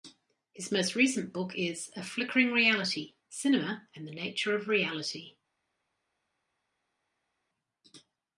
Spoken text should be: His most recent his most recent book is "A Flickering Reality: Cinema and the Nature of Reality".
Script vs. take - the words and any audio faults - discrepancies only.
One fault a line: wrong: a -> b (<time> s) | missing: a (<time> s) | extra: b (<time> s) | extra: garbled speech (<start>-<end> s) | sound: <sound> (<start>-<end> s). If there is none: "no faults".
missing: his most recent (1.3 s)